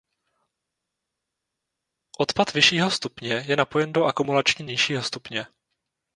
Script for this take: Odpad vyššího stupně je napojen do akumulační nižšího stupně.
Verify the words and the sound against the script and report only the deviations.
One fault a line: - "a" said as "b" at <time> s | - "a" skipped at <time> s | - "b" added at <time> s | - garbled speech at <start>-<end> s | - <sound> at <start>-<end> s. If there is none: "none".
none